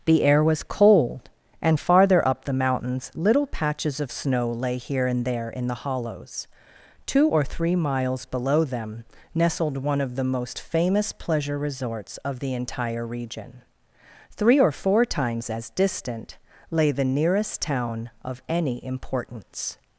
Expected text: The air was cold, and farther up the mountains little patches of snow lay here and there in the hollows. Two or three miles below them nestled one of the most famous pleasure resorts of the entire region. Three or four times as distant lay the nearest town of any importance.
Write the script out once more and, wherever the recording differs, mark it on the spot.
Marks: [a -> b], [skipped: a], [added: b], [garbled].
The air was cold, and farther up the mountains little patches of snow lay here and there in the hollows. Two or three miles below them nestled one of the most famous pleasure resorts of the entire region. Three or four times as distant lay the nearest town of any importance.